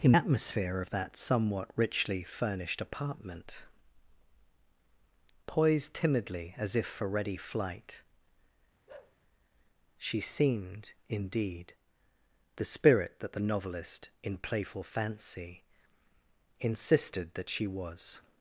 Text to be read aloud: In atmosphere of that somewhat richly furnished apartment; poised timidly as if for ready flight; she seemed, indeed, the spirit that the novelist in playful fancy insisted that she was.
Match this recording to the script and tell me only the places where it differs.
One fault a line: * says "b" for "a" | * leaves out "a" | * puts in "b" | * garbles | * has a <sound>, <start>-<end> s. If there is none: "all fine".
* has a bark, 8.9-9.2 s